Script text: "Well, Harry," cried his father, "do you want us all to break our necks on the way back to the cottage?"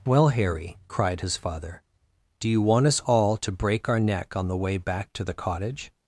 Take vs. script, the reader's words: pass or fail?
fail